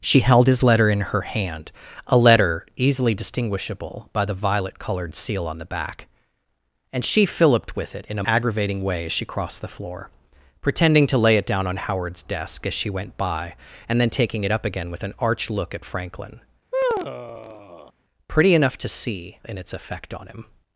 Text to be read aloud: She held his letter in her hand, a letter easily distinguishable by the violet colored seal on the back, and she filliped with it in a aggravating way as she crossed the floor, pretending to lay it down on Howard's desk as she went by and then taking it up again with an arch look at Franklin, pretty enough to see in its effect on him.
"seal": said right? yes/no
yes